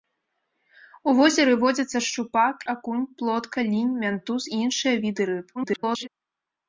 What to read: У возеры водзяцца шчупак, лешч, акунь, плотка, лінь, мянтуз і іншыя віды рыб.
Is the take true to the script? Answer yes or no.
no